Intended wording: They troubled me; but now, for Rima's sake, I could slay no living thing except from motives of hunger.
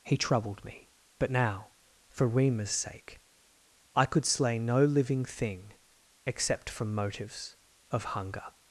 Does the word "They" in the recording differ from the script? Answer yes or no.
yes